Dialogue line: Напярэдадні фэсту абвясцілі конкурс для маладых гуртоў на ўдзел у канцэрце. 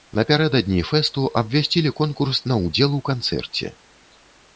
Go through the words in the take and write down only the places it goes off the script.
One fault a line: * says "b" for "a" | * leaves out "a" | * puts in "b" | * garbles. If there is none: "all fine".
* leaves out "для маладых гуртоў"